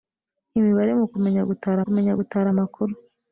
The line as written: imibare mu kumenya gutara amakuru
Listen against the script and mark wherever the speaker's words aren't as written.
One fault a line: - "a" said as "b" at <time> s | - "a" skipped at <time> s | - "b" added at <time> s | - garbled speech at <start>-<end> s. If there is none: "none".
- "kumenya gutara" added at 1.8 s